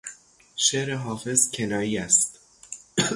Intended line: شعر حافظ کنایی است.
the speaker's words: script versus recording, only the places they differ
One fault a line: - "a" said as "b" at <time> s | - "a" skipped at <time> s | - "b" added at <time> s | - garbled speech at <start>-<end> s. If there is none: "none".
none